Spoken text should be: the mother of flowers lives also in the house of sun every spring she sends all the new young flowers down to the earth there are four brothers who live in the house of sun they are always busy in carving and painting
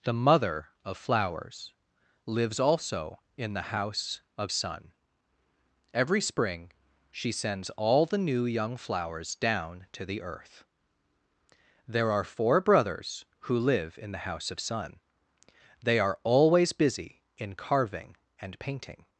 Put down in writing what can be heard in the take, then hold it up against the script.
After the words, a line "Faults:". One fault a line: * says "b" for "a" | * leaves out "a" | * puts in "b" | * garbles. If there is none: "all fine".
the mother of flowers lives also in the house of sun every spring she sends all the new young flowers down to the earth there are four brothers who live in the house of sun they are always busy in carving and painting
Faults:
all fine